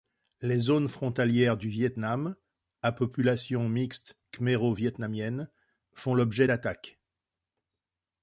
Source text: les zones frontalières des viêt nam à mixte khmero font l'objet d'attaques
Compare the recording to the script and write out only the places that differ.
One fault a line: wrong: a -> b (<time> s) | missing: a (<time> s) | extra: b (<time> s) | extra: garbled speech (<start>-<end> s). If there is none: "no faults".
wrong: des -> du (1.6 s)
extra: population (2.9 s)
extra: vietnamienne (4.7 s)